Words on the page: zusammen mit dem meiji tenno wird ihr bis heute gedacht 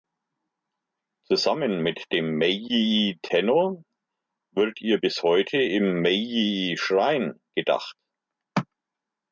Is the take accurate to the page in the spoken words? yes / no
no